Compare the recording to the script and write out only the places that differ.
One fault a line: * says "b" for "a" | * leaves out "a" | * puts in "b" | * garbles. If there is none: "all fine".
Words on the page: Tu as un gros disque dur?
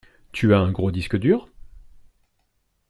all fine